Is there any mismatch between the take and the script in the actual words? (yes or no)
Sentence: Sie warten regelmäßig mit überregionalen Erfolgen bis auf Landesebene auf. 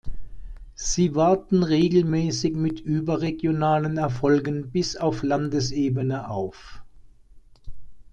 no